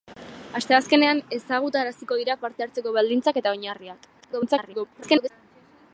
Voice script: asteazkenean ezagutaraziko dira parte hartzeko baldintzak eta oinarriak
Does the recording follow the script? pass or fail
fail